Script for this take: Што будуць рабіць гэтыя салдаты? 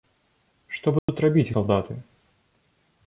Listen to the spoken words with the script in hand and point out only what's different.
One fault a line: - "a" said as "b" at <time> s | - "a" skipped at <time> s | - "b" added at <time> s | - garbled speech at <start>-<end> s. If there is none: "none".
- "гэтыя" skipped at 1.5 s